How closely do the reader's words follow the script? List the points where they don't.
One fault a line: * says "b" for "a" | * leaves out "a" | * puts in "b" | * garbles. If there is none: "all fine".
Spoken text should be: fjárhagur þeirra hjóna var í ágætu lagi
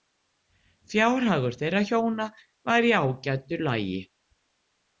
all fine